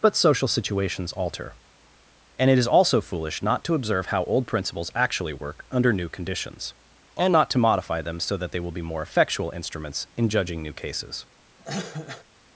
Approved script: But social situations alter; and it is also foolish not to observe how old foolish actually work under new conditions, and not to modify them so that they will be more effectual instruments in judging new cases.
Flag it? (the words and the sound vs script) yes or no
yes